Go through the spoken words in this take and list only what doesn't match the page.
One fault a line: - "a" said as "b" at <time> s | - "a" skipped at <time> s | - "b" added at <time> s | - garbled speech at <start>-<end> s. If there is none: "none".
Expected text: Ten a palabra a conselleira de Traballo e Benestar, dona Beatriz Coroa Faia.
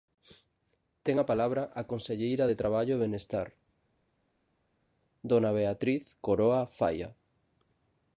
none